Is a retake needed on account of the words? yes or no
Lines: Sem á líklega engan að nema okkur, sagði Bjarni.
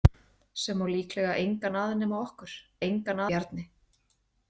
yes